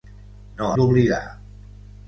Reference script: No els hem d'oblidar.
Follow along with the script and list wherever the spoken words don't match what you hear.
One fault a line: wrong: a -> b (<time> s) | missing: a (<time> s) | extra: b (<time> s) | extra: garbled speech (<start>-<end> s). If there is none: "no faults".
missing: els hem (0.7 s)